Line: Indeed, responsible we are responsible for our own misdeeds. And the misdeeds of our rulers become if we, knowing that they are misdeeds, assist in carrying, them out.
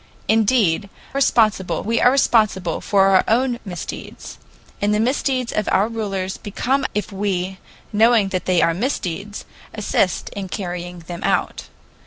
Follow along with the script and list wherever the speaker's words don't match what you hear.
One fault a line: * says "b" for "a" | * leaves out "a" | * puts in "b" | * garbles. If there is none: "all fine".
all fine